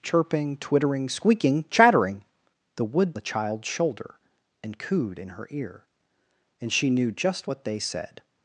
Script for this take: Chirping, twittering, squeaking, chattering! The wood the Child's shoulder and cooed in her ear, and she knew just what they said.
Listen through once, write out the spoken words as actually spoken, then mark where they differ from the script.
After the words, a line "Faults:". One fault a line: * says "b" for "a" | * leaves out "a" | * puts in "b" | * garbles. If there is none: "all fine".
Chirping, twittering, squeaking, chattering! The wood the Child's shoulder and cooed in her ear, and she knew just what they said.
Faults:
all fine